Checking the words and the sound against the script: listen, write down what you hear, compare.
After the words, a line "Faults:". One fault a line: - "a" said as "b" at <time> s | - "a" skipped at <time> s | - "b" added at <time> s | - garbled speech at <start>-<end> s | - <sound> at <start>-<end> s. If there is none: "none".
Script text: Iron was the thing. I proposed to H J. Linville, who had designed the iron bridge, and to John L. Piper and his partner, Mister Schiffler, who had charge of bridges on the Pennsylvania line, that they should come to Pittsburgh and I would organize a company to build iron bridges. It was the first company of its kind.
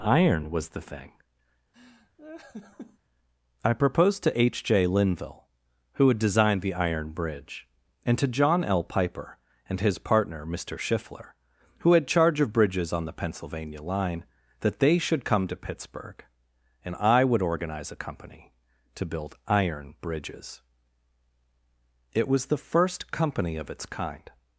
Iron was the thing. I proposed to H J. Linville, who had designed the iron bridge, and to John L. Piper and his partner, Mister Schiffler, who had charge of bridges on the Pennsylvania line, that they should come to Pittsburgh and I would organize a company to build iron bridges. It was the first company of its kind.
Faults:
- laugh at 1.7-3.0 s